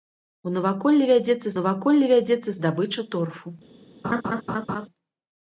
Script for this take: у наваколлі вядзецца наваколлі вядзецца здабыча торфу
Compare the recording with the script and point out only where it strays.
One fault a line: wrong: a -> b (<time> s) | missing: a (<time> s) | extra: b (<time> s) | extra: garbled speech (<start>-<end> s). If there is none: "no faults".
no faults